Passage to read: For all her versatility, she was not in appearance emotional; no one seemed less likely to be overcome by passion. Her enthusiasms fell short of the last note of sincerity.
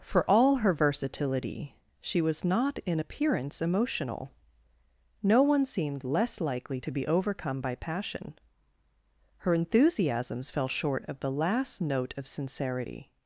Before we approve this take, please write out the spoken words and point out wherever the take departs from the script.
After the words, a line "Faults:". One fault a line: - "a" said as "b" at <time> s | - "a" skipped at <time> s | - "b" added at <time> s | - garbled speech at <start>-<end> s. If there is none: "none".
For all her versatility, she was not in appearance emotional; no one seemed less likely to be overcome by passion. Her enthusiasms fell short of the last note of sincerity.
Faults:
none